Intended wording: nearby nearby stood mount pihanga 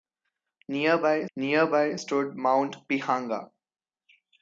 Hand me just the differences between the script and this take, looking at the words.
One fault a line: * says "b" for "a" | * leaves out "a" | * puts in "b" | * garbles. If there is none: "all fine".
all fine